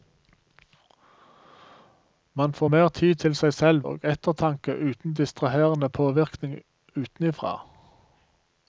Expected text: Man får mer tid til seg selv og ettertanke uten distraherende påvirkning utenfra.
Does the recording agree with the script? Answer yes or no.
yes